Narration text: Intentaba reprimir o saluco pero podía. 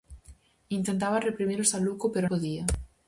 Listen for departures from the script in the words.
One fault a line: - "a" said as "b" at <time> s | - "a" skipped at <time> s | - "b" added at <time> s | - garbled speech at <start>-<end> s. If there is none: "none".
none